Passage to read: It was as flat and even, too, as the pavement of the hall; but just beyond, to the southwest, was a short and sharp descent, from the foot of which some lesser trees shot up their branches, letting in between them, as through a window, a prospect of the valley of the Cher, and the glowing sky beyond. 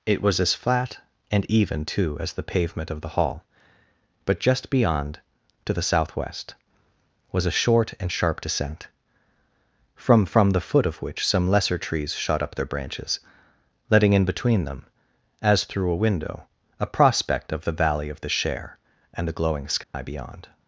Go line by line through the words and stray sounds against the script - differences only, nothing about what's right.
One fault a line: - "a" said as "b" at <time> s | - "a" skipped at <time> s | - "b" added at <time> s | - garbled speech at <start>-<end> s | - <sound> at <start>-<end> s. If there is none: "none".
- "from" added at 10.2 s
- dropout at 19.8-19.9 s